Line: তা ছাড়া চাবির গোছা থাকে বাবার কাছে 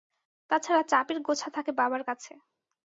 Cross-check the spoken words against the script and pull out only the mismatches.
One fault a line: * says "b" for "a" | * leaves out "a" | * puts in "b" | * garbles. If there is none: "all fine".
all fine